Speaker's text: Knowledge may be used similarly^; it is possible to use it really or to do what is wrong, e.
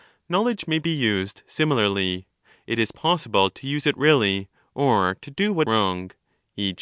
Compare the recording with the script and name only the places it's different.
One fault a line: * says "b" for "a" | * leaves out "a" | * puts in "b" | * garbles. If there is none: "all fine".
* leaves out "is"